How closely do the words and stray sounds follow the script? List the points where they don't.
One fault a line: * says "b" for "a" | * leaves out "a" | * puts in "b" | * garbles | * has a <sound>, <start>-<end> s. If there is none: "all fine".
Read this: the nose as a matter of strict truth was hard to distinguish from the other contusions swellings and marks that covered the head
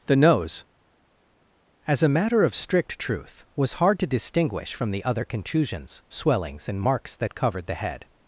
all fine